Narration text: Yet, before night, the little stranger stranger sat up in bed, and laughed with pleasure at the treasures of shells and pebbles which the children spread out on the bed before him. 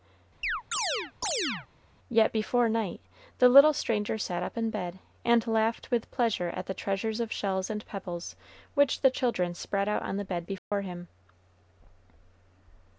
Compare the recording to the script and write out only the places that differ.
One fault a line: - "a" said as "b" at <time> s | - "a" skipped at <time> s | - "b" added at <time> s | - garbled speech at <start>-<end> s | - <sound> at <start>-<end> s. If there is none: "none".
- chirp at 0.4-1.7 s
- "stranger" skipped at 4.2 s
- dropout at 10.6-10.7 s